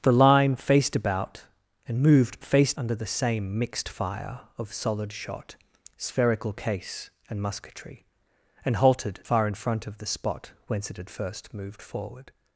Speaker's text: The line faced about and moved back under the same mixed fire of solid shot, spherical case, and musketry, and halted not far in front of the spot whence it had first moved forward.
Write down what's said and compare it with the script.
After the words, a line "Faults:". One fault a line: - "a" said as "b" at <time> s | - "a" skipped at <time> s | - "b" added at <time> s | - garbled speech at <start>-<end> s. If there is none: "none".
The line faced about and moved faced under the same mixed fire of solid shot, spherical case, and musketry, and halted far in front of the spot whence it had first moved forward.
Faults:
- "back" said as "faced" at 2.4 s
- "not" skipped at 9.2 s